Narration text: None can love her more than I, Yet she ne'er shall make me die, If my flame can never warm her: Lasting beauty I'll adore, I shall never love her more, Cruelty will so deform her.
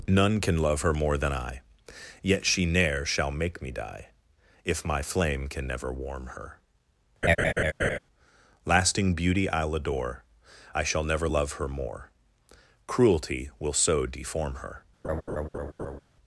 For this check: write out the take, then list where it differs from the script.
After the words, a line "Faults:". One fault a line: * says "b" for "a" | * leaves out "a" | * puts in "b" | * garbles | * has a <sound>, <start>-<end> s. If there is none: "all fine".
None can love her more than I, Yet she ne'er shall make me die, If my flame can never warm her: Lasting beauty I'll adore, I shall never love her more, Cruelty will so deform her.
Faults:
* has a laugh, 7.2-8.0 s
* has a laugh, 15.0-16.0 s